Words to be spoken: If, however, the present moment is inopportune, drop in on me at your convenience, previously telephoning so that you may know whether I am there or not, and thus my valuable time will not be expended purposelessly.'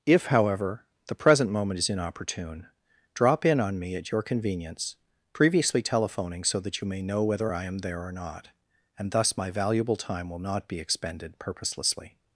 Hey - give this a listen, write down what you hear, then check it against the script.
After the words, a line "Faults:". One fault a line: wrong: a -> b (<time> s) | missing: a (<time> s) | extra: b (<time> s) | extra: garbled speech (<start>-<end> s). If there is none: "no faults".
If, however, the present moment is inopportune, drop in on me at your convenience, previously telephoning so that you may know whether I am there or not, and thus my valuable time will not be expended purposelessly.'
Faults:
no faults